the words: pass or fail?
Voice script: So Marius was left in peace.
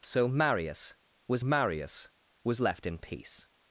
fail